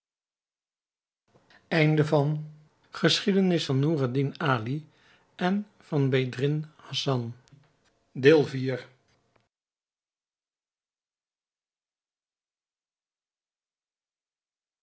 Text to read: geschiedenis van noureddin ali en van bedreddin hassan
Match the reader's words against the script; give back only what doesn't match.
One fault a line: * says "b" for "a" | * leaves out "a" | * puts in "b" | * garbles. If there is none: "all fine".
all fine